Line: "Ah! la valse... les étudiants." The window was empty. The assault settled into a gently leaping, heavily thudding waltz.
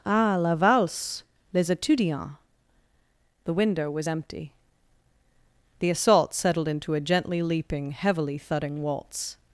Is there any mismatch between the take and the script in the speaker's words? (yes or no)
no